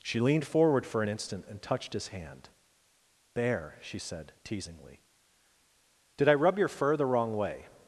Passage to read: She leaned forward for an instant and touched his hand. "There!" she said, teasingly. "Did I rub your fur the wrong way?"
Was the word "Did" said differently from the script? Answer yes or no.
no